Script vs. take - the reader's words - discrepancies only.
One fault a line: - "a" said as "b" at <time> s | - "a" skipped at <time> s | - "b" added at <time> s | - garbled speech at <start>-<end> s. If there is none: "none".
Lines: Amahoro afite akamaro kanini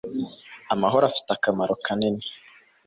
none